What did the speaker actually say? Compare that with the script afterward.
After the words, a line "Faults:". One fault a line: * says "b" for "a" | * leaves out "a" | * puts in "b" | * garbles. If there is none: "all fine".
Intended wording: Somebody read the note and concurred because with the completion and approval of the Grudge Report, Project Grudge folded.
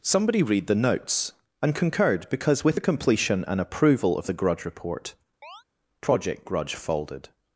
Somebody read the notes and concurred because with the completion and approval of the Grudge Report, Project Grudge folded.
Faults:
* says "notes" for "note"